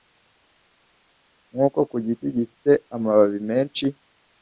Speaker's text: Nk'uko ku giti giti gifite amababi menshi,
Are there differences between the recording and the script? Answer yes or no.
yes